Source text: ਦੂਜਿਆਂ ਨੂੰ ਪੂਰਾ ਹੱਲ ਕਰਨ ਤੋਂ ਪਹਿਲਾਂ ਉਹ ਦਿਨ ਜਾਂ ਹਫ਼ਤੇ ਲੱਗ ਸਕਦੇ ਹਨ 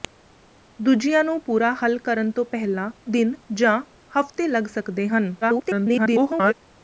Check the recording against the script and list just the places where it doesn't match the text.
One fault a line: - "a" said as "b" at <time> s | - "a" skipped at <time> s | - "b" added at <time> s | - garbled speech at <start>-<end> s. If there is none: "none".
- "ਉਹ" skipped at 2.9 s
- garbled speech at 5.4-6.5 s